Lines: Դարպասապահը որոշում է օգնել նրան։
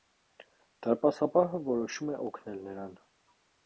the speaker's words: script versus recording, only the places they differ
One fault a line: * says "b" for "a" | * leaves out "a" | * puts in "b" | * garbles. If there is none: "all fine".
all fine